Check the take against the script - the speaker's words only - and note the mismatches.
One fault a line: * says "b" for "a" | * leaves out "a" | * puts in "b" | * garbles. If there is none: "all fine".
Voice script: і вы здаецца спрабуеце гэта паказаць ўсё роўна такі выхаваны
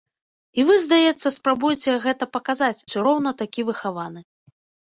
all fine